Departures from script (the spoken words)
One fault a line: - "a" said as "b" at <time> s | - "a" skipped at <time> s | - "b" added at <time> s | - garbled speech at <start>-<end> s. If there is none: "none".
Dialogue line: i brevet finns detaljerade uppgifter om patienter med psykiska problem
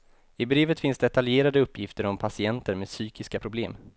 none